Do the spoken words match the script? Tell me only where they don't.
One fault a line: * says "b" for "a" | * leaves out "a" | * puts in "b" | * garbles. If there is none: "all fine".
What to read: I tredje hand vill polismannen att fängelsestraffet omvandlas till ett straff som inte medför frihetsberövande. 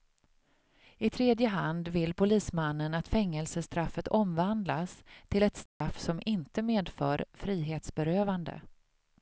all fine